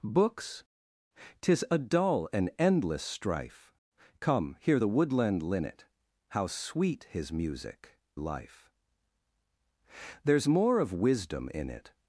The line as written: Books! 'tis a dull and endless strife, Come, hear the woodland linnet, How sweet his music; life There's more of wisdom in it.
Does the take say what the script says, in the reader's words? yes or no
yes